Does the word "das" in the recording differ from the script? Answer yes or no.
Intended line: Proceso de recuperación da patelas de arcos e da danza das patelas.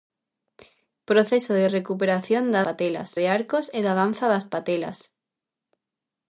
no